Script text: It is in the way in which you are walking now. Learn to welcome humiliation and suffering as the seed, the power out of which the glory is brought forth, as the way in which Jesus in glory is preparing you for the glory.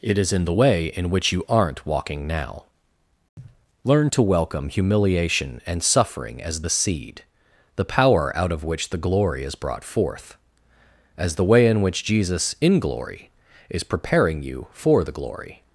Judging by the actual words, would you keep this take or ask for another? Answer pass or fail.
fail